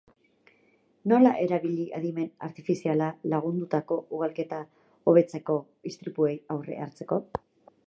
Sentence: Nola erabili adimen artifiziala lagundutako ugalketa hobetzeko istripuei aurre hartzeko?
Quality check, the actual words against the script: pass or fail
pass